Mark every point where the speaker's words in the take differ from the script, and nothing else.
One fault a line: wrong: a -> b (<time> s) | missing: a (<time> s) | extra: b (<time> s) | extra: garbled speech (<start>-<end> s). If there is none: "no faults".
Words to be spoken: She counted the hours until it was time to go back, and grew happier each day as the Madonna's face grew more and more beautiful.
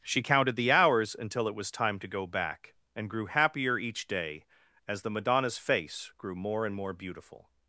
no faults